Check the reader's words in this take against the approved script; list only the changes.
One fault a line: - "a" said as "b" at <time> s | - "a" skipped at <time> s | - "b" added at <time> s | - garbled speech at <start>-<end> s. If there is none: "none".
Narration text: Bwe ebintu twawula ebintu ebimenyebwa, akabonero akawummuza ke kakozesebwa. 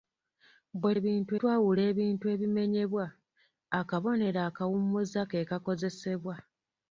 none